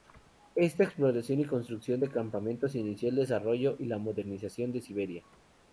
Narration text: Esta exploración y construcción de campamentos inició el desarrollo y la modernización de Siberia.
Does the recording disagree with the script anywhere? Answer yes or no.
no